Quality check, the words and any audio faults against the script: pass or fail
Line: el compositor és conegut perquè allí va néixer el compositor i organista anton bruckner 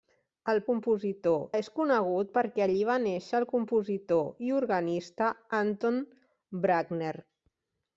pass